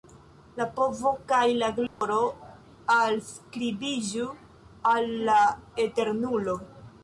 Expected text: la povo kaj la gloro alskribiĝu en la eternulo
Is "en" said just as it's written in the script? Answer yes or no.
no